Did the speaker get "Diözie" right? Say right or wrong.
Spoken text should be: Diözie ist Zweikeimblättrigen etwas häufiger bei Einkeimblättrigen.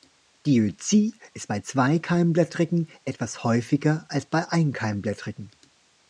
right